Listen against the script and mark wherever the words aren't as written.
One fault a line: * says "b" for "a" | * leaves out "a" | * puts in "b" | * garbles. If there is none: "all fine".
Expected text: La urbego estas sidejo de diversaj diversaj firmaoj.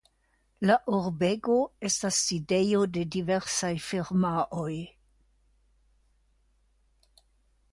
* leaves out "diversaj"